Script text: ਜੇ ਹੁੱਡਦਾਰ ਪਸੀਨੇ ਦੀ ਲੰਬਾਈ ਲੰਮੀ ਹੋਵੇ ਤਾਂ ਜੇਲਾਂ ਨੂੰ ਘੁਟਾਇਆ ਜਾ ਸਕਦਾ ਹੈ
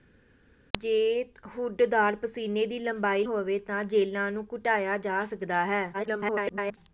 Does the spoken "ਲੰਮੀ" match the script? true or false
false